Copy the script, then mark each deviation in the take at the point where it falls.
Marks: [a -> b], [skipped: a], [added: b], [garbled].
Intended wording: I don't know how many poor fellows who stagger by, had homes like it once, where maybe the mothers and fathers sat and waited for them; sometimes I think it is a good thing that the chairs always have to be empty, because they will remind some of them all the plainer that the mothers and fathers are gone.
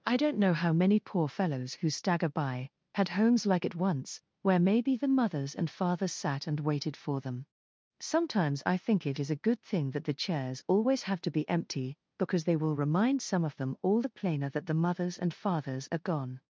I don't know how many poor fellows who stagger by, had homes like it once, where maybe the mothers and fathers sat and waited for them; sometimes I think it is a good thing that the chairs always have to be empty, because they will remind some of them all the plainer that the mothers and fathers are gone.